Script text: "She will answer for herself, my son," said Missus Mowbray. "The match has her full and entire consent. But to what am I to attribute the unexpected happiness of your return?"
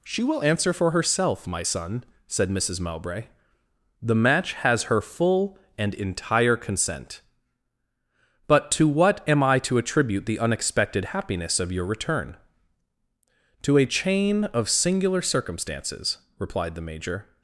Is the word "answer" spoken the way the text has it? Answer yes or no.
yes